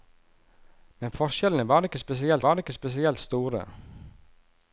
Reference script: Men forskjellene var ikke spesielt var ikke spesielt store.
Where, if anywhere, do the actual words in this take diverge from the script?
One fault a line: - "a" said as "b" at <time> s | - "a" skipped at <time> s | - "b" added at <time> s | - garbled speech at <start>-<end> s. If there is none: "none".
none